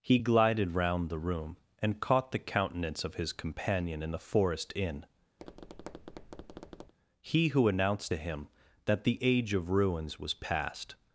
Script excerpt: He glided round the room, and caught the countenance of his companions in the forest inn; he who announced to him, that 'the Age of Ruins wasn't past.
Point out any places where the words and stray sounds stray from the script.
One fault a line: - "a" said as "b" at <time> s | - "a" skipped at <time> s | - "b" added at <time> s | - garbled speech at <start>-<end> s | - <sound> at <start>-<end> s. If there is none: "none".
- "companions" said as "companion" at 3.3 s
- tap at 5.4-6.9 s
- "wasn't" said as "was" at 10.2 s